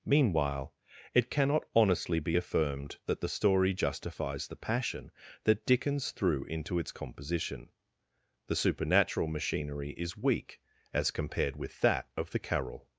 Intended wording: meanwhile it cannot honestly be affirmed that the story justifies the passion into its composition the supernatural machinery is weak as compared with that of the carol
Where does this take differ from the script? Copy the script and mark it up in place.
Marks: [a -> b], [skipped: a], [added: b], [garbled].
meanwhile it cannot honestly be affirmed that the story justifies the passion [added: that dickens threw] into its composition the supernatural machinery is weak as compared with that of the carol